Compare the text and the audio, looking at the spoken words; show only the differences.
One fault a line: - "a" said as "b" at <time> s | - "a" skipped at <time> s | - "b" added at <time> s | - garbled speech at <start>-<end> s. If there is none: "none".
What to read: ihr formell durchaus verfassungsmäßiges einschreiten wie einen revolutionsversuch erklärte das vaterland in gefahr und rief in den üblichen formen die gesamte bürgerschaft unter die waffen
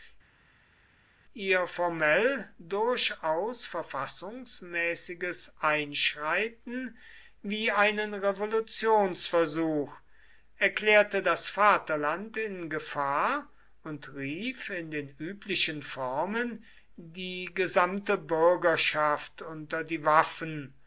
none